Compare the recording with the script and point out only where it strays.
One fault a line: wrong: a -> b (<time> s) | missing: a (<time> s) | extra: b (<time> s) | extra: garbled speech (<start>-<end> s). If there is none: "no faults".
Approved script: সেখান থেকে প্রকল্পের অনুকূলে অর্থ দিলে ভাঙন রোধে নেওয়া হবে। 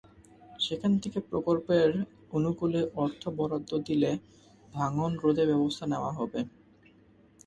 extra: বরাদ্দ (3.4 s)
extra: ব্যবস্থা (5.5 s)